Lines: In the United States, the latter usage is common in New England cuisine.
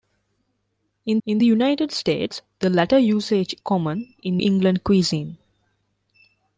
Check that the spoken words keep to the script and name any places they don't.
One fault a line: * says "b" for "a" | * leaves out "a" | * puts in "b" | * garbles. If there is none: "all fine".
* puts in "in"
* leaves out "is"
* leaves out "New"